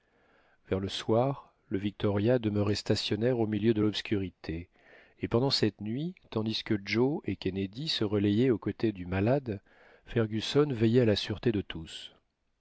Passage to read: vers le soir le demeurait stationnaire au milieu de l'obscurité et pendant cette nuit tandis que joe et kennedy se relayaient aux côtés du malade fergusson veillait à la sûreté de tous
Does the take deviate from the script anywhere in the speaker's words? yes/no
yes